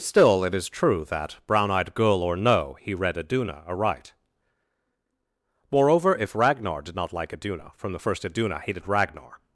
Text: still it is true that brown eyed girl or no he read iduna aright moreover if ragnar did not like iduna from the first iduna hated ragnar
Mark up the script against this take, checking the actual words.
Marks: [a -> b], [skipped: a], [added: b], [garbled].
still it is true that brown eyed girl or no he read iduna aright moreover if ragnar did not like iduna from the first iduna hated ragnar